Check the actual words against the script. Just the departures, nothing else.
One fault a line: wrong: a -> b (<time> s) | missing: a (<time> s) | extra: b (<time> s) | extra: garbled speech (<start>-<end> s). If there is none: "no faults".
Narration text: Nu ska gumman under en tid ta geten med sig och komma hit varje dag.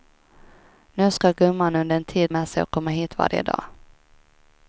missing: ta geten (2.3 s)